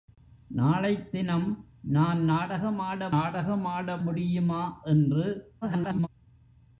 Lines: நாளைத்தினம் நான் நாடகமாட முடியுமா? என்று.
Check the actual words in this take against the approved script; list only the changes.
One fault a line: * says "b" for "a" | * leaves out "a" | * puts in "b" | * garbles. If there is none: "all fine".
* puts in "நாடகமாட"
* garbles